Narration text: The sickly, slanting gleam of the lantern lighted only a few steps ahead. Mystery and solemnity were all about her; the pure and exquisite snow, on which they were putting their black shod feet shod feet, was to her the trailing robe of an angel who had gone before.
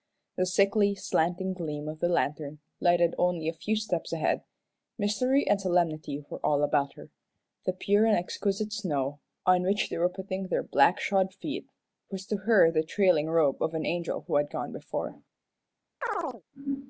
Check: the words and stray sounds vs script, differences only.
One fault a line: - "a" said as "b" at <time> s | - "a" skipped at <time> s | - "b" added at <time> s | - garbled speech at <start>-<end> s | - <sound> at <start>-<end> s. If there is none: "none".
- "shod feet" skipped at 11.7 s
- chirp at 16.0-16.4 s